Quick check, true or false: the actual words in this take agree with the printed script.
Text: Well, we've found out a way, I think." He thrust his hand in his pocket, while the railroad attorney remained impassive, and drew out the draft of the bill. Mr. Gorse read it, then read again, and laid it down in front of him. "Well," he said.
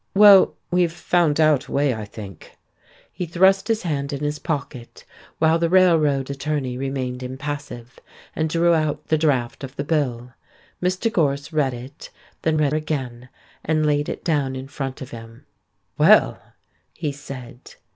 true